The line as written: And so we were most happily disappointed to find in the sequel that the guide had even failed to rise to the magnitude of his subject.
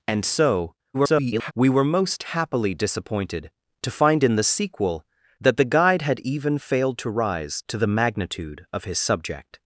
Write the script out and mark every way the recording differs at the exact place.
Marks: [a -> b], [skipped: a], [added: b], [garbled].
And so [garbled] we were most happily disappointed to find in the sequel that the guide had even failed to rise to the magnitude of his subject.